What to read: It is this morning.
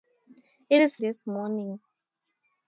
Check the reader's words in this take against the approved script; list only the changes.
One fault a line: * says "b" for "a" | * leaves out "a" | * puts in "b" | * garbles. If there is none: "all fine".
all fine